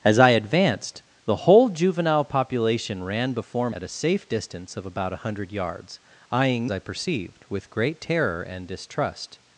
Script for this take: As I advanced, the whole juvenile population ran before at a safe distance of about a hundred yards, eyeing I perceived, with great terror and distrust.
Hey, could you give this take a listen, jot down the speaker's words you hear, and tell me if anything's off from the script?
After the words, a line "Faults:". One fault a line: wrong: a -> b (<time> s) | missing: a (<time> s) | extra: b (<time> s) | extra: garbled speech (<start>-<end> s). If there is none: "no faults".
As I advanced, the whole juvenile population ran before at a safe distance of about a hundred yards, eyeing I perceived, with great terror and distrust.
Faults:
no faults